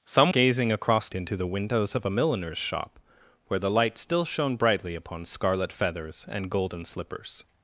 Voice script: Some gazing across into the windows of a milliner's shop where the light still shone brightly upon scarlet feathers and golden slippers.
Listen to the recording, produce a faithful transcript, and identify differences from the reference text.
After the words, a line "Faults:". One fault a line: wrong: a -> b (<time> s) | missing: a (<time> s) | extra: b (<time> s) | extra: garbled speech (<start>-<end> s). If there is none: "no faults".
Some gazing across into the windows of a milliner's shop where the light still shone brightly upon scarlet feathers and golden slippers.
Faults:
no faults